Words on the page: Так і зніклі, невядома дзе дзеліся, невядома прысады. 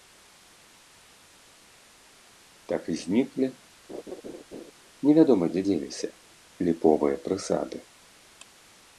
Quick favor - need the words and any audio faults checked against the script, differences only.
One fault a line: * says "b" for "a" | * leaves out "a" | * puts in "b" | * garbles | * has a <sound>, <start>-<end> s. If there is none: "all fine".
* has a laugh, 3.9-4.7 s
* says "ліповыя" for "невядома"